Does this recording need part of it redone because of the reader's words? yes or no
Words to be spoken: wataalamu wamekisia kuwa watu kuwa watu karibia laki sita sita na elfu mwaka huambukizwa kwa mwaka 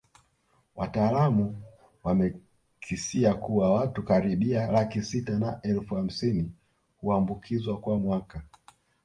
yes